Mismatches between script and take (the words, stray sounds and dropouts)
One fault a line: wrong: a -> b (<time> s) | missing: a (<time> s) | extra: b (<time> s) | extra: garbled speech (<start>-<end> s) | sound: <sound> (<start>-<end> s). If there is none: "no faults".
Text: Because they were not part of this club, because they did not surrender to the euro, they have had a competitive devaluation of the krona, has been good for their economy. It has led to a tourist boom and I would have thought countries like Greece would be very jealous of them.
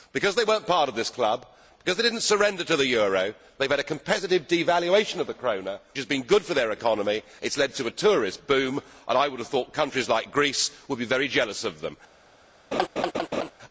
sound: laugh (12.7-13.5 s)